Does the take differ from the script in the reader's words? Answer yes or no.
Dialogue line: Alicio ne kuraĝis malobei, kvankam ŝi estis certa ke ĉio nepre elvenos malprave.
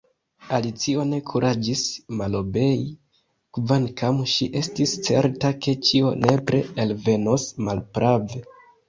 no